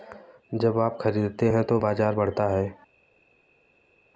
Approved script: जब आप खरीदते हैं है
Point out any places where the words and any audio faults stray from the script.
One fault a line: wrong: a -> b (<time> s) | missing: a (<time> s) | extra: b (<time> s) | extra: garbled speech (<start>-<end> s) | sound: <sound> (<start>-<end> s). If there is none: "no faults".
extra: तो बाजार बढ़ता (1.6 s)